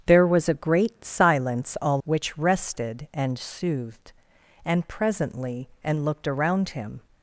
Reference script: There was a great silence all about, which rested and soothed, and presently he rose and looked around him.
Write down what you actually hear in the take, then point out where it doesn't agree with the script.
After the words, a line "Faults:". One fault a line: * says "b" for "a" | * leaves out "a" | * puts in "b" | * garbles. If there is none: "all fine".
There was a great silence all which rested and soothed, and presently and looked around him.
Faults:
* leaves out "about"
* leaves out "he rose"